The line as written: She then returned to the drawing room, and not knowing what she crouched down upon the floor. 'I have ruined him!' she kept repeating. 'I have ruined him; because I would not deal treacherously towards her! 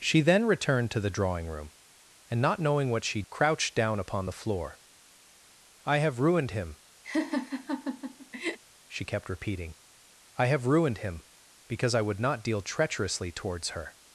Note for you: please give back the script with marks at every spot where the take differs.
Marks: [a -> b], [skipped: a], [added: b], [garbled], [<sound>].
She then returned to the drawing room, and not knowing what she crouched down upon the floor. 'I have ruined him!' [laugh] she kept repeating. 'I have ruined him; because I would not deal treacherously towards her!